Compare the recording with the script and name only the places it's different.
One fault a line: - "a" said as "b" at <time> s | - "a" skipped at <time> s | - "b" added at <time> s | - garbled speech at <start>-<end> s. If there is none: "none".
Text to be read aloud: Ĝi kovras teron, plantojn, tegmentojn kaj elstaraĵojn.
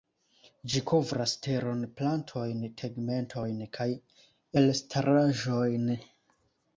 none